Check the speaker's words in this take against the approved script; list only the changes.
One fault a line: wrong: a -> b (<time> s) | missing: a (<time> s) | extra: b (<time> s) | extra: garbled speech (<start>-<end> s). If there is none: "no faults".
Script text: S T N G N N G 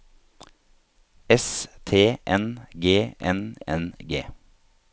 no faults